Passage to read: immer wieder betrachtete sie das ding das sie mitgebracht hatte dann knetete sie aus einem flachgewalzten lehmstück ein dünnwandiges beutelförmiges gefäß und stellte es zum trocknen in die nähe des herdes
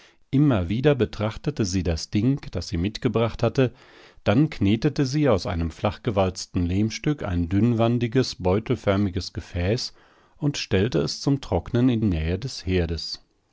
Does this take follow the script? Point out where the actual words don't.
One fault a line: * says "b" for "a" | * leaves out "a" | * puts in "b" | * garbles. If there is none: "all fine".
* leaves out "die"